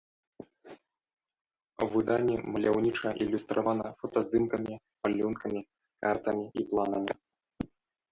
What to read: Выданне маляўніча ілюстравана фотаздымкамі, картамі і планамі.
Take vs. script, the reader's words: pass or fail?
fail